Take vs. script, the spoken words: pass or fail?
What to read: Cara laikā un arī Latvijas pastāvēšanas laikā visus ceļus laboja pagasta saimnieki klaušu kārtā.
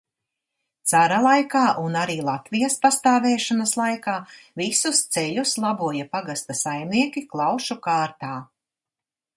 pass